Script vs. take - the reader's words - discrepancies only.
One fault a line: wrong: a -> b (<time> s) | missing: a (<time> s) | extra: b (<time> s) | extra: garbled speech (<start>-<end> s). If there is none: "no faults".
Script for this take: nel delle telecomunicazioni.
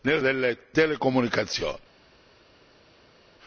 no faults